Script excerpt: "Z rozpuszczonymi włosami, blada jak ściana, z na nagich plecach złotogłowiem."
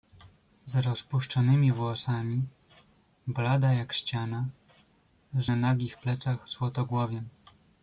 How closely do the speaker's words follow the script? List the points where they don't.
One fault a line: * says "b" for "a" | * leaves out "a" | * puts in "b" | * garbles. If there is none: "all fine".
all fine